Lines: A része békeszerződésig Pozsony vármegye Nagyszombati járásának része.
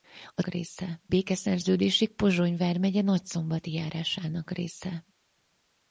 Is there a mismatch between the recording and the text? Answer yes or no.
no